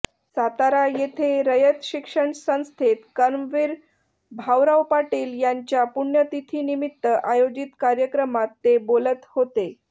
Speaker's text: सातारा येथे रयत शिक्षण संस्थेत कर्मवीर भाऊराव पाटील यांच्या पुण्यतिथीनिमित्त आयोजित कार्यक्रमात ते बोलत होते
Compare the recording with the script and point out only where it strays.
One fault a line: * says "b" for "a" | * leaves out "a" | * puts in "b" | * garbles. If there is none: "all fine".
all fine